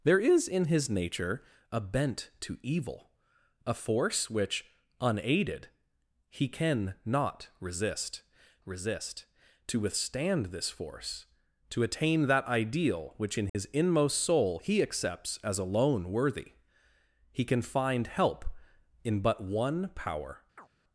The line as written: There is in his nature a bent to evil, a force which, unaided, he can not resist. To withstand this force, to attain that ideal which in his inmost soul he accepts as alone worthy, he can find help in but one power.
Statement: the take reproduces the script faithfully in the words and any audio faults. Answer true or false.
false